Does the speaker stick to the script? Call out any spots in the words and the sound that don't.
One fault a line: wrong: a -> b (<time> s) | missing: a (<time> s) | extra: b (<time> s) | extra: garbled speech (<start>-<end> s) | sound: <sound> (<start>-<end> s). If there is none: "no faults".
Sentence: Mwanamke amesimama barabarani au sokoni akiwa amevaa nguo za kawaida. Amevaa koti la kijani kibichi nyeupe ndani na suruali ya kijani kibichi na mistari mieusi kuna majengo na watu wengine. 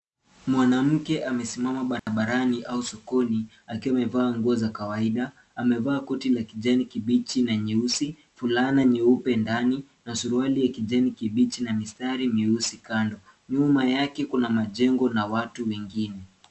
sound: dropout (2.0-2.1 s)
extra: na nyeusi fulana (7.4 s)
extra: kando Nyuma yake (12.8 s)